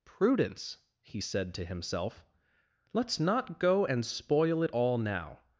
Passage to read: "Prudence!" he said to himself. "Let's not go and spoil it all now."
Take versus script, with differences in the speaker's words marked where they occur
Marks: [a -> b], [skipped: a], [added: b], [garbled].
"Prudence!" he said to himself. "Let's not go and spoil it all now."